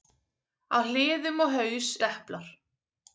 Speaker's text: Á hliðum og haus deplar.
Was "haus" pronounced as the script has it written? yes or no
yes